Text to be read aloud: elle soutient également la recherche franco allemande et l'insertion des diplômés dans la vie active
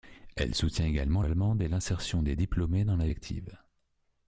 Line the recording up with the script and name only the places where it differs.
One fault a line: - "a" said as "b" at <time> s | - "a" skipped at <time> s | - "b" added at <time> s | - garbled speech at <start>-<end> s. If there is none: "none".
- "la recherche franco" skipped at 1.2 s
- "vie" skipped at 3.1 s